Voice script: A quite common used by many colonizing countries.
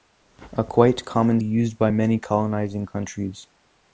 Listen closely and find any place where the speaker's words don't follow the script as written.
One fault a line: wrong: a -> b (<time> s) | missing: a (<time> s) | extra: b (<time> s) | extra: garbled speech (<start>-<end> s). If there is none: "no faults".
no faults